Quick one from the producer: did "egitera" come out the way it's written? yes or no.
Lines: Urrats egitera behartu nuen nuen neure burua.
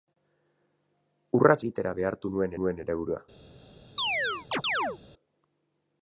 yes